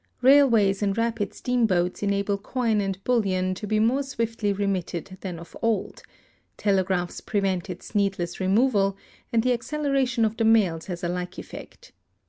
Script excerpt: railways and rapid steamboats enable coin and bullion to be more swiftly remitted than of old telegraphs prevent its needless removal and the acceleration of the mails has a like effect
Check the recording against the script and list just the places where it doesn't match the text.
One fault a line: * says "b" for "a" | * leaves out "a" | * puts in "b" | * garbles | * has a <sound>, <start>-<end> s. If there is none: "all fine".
all fine